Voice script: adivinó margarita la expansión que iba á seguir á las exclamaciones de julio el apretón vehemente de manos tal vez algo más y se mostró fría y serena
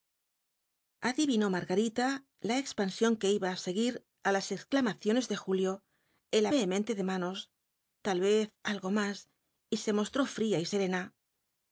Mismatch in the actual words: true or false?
true